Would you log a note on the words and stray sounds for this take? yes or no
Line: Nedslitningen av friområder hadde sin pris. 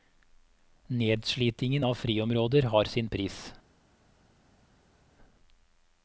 yes